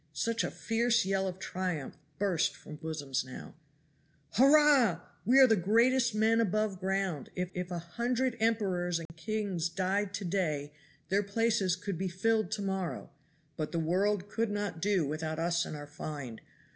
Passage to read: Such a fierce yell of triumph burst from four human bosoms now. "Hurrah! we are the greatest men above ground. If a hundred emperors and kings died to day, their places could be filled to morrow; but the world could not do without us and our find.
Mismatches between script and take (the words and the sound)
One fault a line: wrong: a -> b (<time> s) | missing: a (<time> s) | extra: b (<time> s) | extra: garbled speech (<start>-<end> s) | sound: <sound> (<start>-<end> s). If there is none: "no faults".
missing: four human (2.8 s)
extra: if (7.5 s)
sound: dropout (9.1-9.1 s)